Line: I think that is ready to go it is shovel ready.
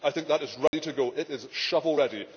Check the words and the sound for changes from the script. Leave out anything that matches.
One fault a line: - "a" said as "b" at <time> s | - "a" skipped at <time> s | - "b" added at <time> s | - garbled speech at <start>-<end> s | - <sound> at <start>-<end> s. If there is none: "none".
- dropout at 0.7-0.7 s